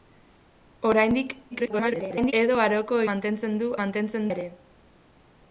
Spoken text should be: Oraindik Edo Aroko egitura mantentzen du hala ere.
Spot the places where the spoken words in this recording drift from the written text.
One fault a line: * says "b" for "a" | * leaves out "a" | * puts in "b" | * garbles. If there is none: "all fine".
* garbles
* leaves out "egitura"
* says "mantentzen" for "hala"